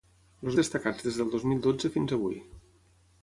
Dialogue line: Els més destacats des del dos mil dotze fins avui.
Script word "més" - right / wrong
wrong